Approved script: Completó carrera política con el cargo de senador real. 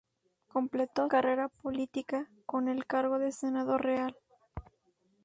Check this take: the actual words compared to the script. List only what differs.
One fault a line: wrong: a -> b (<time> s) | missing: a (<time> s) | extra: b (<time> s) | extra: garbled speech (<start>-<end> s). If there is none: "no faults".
no faults